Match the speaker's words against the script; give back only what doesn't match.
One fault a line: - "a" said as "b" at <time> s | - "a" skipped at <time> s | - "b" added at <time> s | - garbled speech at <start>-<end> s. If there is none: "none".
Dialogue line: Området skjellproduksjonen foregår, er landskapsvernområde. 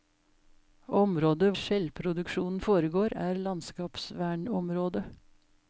none